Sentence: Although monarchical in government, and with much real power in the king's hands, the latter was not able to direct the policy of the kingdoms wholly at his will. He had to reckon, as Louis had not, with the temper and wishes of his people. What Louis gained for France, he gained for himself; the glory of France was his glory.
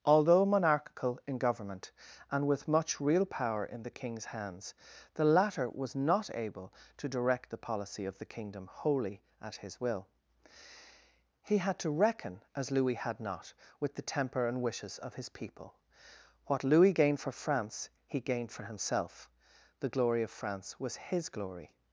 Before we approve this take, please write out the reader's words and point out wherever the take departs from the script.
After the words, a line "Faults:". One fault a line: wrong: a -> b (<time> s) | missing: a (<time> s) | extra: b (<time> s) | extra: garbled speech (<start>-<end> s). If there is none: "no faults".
Although monarchical in government, and with much real power in the king's hands, the latter was not able to direct the policy of the kingdom wholly at his will. He had to reckon, as Louis had not, with the temper and wishes of his people. What Louis gained for France, he gained for himself; the glory of France was his glory.
Faults:
wrong: kingdoms -> kingdom (8.2 s)